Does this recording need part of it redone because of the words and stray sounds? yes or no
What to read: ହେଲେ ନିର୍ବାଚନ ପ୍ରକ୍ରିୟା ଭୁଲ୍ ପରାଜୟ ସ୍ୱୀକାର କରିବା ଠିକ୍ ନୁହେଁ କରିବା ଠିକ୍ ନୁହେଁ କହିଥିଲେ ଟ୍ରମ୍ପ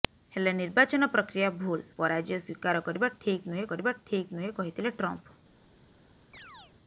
yes